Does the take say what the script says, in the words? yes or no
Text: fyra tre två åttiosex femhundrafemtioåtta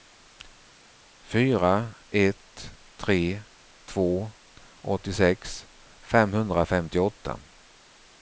no